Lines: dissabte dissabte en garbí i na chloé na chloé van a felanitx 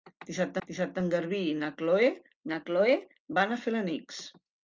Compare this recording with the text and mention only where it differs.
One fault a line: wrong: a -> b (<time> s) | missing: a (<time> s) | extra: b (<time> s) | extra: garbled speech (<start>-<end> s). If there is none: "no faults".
no faults